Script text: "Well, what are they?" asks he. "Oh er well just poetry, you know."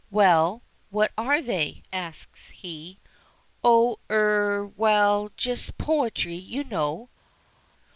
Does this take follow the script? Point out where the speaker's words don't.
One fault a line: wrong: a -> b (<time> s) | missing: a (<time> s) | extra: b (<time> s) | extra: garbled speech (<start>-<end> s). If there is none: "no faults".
no faults